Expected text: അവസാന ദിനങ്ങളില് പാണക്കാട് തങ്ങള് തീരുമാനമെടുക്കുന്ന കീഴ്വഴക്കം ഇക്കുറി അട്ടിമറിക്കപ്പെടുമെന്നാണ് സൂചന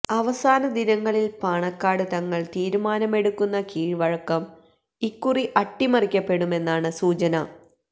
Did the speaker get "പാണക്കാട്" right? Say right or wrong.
right